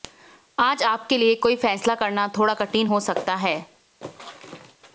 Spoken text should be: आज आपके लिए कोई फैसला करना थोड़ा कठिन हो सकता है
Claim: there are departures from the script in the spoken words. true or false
false